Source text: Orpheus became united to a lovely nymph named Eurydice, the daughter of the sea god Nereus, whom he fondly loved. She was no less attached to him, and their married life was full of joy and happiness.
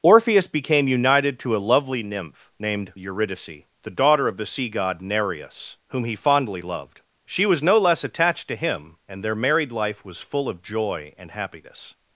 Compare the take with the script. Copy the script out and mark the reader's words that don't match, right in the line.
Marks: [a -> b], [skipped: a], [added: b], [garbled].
Orpheus became united to a lovely nymph named Eurydice, the daughter of the sea god Nereus, whom he fondly loved. She was no less attached to him, and their married life was full of joy and happiness.